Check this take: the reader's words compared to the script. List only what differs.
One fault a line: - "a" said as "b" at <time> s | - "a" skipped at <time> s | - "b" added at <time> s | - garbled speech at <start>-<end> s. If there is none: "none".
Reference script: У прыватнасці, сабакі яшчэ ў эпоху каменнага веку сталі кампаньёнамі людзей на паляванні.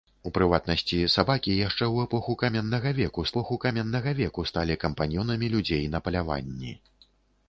- "эпоху каменнага веку" added at 3.3 s